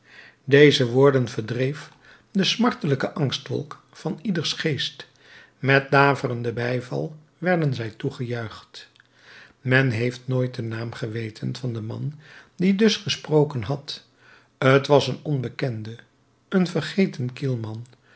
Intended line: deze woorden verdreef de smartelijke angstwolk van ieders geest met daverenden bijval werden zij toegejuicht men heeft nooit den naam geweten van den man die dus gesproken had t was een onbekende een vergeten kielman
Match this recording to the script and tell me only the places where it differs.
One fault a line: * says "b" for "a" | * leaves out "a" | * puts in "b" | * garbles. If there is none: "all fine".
all fine